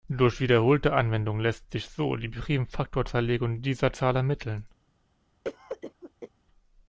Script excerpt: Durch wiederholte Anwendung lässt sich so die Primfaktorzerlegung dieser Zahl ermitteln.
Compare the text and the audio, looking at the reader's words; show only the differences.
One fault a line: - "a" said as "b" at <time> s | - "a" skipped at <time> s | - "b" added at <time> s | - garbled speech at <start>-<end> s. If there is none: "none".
none